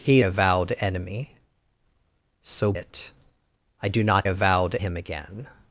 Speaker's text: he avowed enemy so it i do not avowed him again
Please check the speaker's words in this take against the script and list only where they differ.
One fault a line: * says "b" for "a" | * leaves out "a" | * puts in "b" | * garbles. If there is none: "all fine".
all fine